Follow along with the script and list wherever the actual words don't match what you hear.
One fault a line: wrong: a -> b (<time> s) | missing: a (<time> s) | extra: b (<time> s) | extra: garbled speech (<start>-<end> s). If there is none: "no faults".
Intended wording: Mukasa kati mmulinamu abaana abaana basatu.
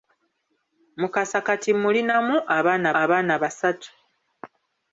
no faults